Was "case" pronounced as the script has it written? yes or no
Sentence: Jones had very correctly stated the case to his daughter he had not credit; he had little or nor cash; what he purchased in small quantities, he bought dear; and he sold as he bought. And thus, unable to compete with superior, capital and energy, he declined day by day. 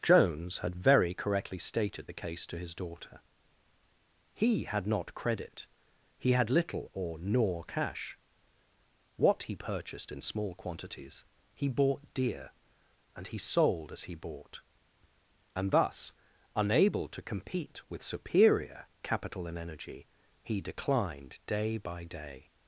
yes